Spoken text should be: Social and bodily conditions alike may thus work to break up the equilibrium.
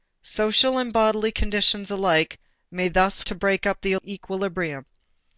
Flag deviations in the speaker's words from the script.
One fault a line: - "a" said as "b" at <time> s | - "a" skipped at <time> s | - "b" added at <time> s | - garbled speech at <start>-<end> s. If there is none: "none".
- "work" skipped at 3.3 s